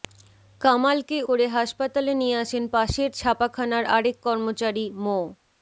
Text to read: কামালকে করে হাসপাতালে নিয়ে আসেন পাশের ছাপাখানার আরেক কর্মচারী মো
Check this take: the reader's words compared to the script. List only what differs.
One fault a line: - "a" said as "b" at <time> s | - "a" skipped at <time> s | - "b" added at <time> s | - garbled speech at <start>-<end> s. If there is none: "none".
none